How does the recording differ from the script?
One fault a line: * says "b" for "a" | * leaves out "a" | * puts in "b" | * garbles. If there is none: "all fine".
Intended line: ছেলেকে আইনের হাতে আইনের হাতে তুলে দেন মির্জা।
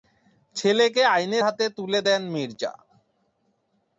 * leaves out "আইনের হাতে"